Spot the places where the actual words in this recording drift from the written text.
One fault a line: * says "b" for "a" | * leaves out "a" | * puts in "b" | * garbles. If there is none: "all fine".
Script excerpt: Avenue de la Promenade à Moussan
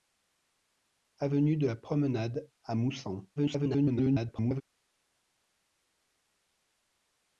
* garbles